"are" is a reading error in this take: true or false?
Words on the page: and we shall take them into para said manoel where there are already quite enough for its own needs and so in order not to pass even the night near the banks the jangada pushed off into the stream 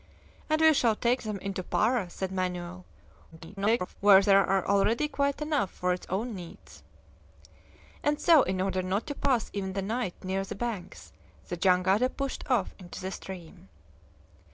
false